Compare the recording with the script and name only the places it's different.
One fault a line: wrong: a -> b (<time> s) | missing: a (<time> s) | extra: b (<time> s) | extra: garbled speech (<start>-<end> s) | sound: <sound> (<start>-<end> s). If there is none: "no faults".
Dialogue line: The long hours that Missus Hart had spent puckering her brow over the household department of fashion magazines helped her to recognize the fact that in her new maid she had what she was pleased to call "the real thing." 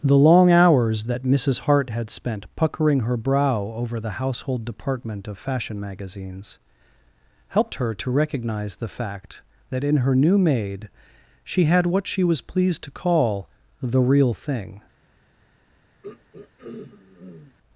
sound: throat clearing (16.0-17.6 s)